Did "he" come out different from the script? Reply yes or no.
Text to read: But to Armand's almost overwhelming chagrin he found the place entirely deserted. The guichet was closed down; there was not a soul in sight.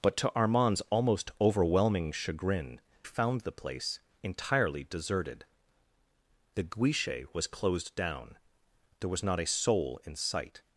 yes